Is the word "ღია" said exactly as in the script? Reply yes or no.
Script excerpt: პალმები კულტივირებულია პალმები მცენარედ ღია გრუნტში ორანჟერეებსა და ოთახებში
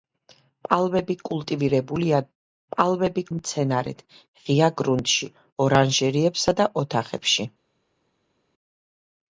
yes